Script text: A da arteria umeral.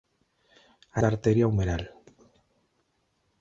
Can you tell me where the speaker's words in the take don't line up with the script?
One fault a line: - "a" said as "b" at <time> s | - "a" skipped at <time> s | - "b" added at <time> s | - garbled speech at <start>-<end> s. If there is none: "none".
none